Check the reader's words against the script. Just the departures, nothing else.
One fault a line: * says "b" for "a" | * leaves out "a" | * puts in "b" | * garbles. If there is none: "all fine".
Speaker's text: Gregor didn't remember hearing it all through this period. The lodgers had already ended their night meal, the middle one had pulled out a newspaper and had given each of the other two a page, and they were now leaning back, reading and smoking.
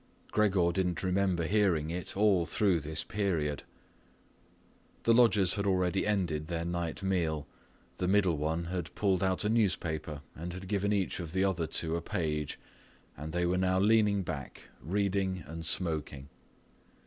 all fine